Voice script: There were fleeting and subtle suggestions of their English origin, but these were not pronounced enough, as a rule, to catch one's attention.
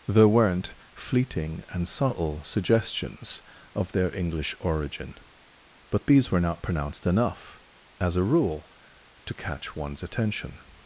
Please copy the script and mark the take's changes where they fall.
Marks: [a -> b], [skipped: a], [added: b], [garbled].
There [were -> weren't] fleeting and subtle suggestions of their English origin, but these were not pronounced enough, as a rule, to catch one's attention.